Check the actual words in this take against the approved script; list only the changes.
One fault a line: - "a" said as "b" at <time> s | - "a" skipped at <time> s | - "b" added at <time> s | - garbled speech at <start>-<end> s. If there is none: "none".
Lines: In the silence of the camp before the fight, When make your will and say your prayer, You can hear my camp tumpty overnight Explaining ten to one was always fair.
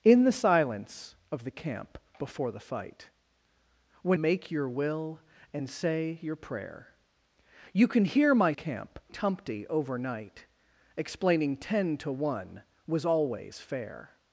none